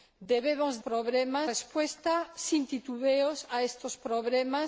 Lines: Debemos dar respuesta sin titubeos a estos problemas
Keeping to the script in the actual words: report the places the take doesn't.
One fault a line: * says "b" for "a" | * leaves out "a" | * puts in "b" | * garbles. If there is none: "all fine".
* says "problemas" for "dar"